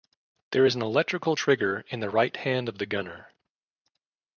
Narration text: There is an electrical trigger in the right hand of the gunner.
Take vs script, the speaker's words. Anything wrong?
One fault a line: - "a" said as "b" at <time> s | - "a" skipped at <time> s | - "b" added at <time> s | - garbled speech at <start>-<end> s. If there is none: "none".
none